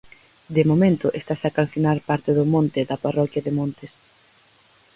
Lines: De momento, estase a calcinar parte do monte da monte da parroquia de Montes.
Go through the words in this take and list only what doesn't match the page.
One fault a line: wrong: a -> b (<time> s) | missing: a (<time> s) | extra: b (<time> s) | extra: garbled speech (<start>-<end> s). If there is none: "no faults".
missing: monte da (3.0 s)